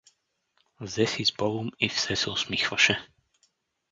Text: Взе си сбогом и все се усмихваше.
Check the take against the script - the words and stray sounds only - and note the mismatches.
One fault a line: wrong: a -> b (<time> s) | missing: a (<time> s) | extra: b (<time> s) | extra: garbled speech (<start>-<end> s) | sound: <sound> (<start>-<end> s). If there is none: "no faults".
no faults